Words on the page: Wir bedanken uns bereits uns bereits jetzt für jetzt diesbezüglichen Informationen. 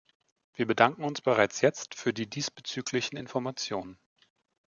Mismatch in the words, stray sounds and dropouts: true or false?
true